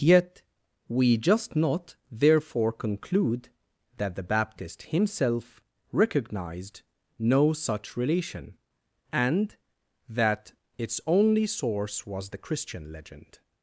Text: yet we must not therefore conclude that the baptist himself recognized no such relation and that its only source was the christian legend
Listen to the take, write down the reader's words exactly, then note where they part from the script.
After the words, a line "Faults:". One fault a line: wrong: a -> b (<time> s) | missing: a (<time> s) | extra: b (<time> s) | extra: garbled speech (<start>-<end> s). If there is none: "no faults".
yet we just not therefore conclude that the baptist himself recognized no such relation and that its only source was the christian legend
Faults:
wrong: must -> just (1.2 s)